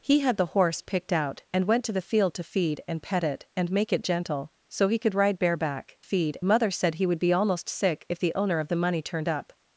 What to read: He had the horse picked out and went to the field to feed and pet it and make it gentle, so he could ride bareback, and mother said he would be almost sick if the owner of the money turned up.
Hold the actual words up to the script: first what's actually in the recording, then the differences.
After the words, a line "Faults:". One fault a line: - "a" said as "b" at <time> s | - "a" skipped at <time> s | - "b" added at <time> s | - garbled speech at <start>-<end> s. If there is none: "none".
He had the horse picked out and went to the field to feed and pet it and make it gentle, so he could ride bareback, feed mother said he would be almost sick if the owner of the money turned up.
Faults:
- "and" said as "feed" at 6.0 s